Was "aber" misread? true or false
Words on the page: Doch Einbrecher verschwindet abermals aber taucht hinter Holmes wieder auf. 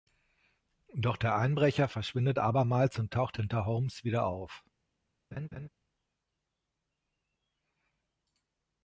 true